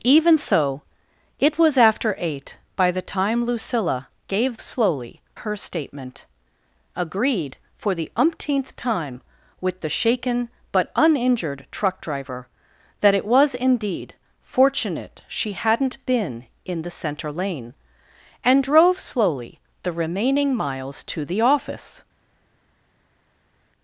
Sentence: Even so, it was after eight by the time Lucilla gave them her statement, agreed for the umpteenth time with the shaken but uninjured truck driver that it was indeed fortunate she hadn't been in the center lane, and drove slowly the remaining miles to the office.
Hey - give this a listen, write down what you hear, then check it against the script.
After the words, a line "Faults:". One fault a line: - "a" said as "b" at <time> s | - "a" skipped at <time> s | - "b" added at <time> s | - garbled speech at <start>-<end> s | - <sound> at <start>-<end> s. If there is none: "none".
Even so, it was after eight by the time Lucilla gave slowly her statement, agreed for the umpteenth time with the shaken but uninjured truck driver that it was indeed fortunate she hadn't been in the center lane, and drove slowly the remaining miles to the office.
Faults:
- "them" said as "slowly" at 4.6 s